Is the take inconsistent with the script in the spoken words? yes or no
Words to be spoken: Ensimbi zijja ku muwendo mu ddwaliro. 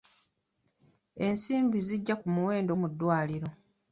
no